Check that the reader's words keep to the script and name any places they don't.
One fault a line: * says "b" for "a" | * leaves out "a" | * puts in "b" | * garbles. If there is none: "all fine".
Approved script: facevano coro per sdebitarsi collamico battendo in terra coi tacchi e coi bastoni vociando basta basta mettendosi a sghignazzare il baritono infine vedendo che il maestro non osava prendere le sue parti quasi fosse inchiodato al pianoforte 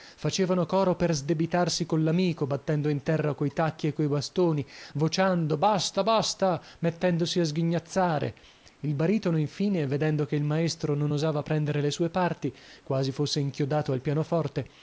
all fine